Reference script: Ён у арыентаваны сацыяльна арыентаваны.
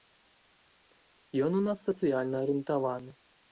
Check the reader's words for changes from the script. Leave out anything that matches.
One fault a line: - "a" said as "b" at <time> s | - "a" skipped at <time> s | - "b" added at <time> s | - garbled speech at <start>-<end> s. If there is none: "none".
- "арыентаваны" said as "нас" at 1.7 s